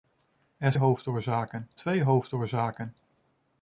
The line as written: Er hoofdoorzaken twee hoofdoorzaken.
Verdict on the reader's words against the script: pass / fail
pass